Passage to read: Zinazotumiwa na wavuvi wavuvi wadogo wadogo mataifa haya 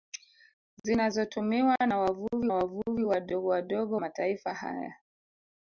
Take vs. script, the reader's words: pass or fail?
pass